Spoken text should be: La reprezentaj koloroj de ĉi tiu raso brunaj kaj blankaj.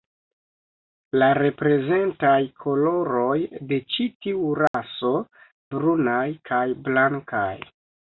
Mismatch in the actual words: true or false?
false